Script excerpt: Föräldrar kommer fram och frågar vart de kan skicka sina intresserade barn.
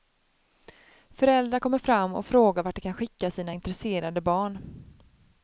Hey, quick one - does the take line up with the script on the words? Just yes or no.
yes